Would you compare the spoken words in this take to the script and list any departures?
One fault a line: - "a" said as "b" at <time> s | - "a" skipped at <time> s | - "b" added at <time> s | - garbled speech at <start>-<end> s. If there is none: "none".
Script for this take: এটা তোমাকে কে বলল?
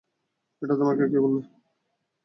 none